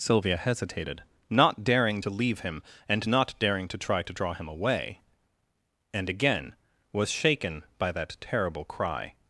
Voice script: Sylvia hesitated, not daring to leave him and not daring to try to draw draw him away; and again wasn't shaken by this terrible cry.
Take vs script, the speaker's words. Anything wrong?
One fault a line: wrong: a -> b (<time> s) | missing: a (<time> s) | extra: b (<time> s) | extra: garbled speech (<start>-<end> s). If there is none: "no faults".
missing: draw (4.3 s)
wrong: wasn't -> was (6.9 s)
wrong: this -> that (7.9 s)